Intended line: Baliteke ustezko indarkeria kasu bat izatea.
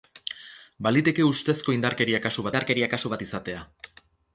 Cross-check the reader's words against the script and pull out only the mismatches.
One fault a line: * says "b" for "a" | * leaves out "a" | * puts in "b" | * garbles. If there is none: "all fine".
* puts in "indarkeria kasu"